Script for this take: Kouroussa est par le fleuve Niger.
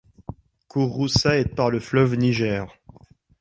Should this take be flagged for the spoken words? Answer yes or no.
no